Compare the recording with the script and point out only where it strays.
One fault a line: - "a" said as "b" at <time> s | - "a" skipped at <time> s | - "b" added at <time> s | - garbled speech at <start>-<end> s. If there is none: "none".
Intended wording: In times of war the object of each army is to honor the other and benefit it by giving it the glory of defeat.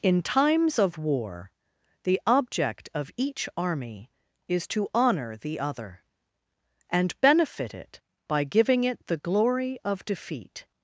none